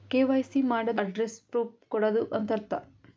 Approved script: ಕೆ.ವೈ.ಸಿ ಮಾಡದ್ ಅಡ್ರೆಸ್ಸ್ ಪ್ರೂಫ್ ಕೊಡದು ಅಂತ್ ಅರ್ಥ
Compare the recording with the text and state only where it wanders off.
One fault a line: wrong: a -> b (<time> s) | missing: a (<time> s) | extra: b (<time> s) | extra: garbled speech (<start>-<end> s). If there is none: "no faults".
no faults